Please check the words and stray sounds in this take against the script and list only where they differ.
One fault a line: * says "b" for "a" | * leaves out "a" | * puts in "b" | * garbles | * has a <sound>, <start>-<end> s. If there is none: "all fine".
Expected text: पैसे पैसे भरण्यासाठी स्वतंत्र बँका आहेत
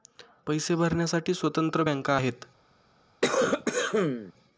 * leaves out "पैसे"
* has a cough, 3.2-4.3 s